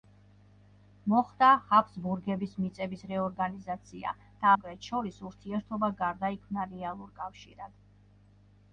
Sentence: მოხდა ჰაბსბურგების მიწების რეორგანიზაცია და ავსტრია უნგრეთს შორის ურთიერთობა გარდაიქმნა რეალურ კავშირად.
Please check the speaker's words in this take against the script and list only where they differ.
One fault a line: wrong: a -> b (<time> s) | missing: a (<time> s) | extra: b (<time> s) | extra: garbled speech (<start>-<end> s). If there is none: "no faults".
missing: ავსტრია (4.5 s)